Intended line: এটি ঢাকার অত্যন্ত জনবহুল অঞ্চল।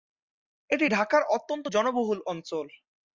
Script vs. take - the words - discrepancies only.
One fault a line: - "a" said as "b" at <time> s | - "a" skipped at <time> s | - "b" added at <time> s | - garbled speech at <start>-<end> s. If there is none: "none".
none